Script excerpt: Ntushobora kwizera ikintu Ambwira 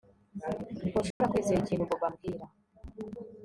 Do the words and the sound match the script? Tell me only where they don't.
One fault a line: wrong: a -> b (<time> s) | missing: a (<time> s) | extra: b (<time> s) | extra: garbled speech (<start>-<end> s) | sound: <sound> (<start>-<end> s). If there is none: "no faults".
sound: dropout (1.1-1.2 s)
extra: Bobo (1.9 s)